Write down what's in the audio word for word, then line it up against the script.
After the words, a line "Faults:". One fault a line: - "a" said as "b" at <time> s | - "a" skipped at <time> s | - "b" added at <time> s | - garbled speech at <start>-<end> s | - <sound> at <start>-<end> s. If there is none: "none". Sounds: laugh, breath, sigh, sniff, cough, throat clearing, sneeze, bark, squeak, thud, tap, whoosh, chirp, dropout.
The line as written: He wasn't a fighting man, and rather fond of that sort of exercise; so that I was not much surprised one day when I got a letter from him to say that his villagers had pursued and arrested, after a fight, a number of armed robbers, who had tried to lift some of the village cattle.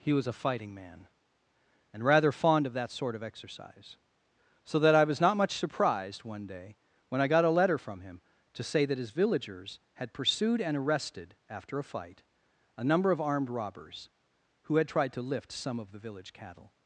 He was a fighting man, and rather fond of that sort of exercise; so that I was not much surprised one day when I got a letter from him to say that his villagers had pursued and arrested, after a fight, a number of armed robbers, who had tried to lift some of the village cattle.
Faults:
- "wasn't" said as "was" at 0.1 s